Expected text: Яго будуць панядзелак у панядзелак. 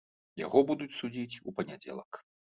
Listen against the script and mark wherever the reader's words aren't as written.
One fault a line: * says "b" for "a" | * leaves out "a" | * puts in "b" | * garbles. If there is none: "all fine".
* says "судзіць" for "панядзелак"